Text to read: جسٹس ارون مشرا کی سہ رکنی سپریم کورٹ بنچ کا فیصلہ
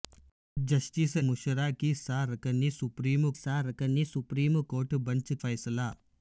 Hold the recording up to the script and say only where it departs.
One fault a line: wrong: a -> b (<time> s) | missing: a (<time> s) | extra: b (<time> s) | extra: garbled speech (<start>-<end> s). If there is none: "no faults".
missing: ارون (1.1 s)
extra: سہ رکنی سپریم (3.3 s)
missing: کا (5.3 s)